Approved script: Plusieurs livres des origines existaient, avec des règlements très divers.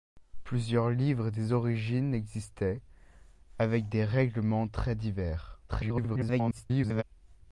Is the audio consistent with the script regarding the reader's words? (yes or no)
no